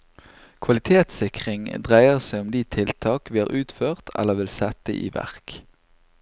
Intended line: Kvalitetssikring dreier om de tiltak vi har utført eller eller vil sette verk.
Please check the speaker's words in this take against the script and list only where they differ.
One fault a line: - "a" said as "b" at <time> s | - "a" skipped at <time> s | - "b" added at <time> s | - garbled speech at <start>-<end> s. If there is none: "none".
- "seg" added at 2.3 s
- "eller" skipped at 4.4 s
- "i" added at 5.0 s